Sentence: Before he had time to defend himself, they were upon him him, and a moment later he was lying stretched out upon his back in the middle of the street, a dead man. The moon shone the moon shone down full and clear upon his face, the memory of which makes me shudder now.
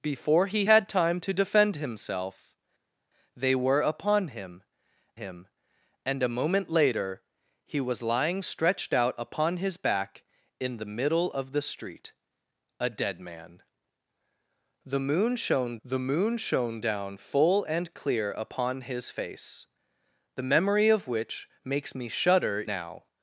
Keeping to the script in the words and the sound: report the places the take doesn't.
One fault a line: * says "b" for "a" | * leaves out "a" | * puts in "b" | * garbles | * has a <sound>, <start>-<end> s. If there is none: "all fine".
all fine